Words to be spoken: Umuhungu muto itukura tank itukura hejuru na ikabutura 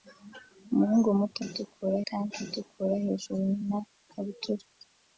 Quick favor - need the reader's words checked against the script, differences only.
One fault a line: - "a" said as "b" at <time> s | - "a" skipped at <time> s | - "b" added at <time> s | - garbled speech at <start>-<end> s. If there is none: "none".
none